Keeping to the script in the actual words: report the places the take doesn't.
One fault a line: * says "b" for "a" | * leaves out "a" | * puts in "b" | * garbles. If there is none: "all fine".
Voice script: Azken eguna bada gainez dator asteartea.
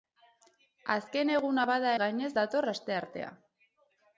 all fine